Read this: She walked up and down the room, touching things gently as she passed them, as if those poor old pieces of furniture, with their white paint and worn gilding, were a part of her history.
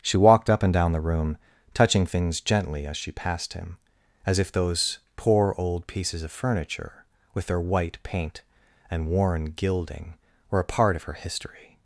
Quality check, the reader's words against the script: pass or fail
fail